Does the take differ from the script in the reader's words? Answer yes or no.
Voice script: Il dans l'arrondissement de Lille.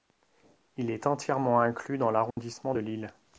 yes